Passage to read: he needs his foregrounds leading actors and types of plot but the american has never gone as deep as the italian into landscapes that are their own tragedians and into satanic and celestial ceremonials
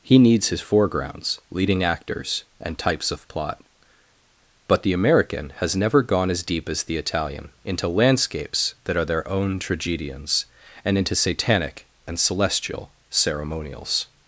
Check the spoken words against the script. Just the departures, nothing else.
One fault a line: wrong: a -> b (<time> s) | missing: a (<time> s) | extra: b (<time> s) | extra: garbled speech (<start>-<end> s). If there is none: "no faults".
no faults